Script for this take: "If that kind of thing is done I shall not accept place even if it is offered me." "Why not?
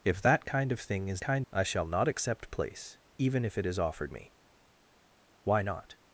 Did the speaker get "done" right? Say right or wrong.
wrong